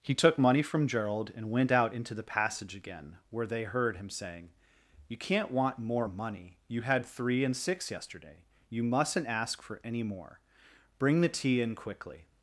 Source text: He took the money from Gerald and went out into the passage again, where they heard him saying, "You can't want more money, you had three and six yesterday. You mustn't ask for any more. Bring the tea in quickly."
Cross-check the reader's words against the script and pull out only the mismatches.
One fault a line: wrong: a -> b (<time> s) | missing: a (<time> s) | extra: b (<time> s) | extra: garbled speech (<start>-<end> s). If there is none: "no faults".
missing: the (0.4 s)